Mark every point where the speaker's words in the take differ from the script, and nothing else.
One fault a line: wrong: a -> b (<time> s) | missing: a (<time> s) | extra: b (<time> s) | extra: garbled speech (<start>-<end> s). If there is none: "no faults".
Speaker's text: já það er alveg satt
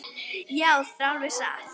missing: það (0.7 s)